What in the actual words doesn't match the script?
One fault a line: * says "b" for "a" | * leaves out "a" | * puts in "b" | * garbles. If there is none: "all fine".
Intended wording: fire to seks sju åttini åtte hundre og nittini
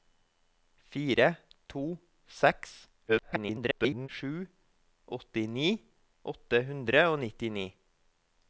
* garbles